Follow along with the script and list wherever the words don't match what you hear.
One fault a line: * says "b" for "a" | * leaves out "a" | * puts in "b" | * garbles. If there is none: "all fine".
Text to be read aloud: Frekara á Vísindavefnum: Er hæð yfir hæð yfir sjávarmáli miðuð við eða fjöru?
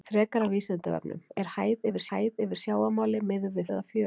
all fine